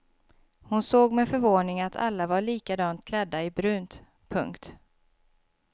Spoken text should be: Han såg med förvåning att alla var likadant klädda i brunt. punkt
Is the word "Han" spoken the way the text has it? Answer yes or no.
no